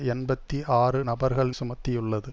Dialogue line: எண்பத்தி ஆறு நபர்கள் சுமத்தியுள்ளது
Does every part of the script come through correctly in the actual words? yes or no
yes